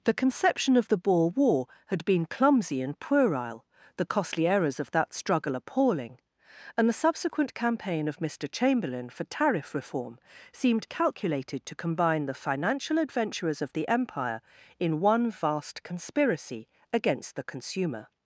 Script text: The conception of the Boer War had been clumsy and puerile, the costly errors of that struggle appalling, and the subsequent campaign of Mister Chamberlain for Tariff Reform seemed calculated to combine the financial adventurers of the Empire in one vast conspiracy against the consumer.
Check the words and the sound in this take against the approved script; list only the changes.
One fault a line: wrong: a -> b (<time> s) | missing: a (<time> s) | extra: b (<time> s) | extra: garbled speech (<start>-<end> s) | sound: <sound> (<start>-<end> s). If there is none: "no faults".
no faults